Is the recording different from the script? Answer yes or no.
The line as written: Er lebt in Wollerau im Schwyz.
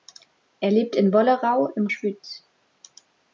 no